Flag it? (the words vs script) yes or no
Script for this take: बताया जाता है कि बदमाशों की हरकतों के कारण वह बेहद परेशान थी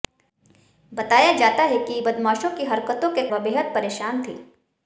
yes